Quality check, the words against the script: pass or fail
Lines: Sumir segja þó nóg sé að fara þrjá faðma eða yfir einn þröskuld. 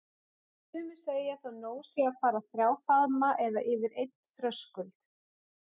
pass